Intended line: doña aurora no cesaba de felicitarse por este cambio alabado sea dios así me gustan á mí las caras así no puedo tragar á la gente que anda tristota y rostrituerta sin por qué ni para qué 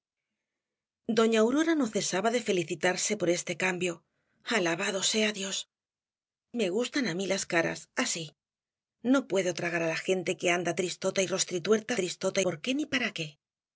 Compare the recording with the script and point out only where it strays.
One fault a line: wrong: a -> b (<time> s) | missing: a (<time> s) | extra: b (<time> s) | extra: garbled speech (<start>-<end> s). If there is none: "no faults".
missing: así (5.6 s)
wrong: sin -> tristota (12.0 s)